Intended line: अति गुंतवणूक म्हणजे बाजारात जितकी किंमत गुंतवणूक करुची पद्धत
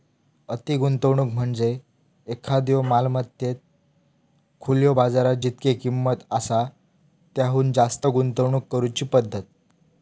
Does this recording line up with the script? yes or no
no